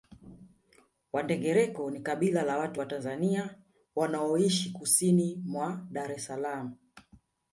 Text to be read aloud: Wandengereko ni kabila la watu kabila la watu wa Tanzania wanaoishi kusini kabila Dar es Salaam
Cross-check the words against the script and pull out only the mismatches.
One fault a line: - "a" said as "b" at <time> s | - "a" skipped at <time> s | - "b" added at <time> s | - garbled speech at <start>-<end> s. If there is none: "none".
- "kabila la watu" skipped at 2.8 s
- "kabila" said as "mwa" at 5.4 s